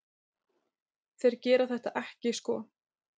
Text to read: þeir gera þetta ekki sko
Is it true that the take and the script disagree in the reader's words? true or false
false